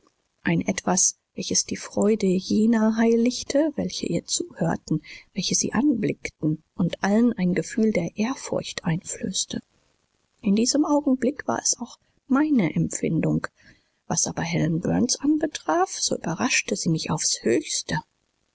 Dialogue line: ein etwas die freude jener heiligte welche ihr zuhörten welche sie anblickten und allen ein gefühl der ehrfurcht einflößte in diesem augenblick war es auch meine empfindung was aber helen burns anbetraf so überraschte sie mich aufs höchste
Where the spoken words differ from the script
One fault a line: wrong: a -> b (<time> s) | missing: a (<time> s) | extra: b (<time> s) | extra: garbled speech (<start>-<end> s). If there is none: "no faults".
extra: welches (1.4 s)